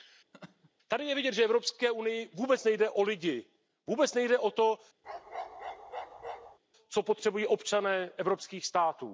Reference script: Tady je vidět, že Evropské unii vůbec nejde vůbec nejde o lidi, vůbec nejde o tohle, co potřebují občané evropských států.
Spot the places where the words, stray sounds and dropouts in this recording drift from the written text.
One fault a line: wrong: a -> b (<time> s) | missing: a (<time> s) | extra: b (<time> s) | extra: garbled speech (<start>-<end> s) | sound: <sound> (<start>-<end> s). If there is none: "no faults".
sound: laugh (0.3-0.7 s)
missing: vůbec nejde (2.9 s)
wrong: tohle -> to (4.5 s)
sound: bark (5.0-6.6 s)